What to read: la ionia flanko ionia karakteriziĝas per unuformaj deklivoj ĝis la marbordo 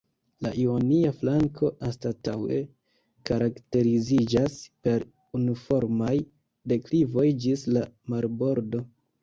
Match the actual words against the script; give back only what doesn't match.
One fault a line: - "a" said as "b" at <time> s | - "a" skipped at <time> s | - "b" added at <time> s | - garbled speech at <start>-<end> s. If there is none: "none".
- "ionia" said as "anstataŭe" at 1.9 s